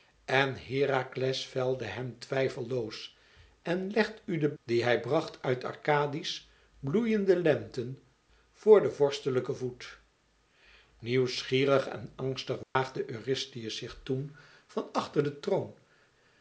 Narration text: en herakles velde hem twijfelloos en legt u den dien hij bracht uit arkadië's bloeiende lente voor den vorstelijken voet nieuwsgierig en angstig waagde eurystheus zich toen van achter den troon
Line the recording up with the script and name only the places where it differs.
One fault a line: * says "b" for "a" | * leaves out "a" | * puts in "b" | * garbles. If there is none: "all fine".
all fine